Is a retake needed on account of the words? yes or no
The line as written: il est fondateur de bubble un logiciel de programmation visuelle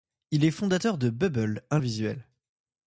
yes